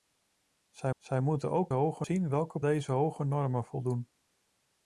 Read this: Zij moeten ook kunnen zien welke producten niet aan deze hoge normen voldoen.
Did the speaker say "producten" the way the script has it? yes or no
no